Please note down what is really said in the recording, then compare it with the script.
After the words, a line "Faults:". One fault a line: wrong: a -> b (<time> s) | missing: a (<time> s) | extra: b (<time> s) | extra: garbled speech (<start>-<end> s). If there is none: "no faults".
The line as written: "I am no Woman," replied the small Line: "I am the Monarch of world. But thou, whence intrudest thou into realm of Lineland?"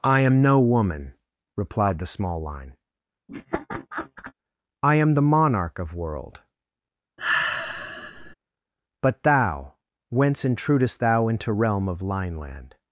"I am no Woman," replied the small Line: "I am the Monarch of world. But thou, whence intrudest thou into realm of Lineland?"
Faults:
no faults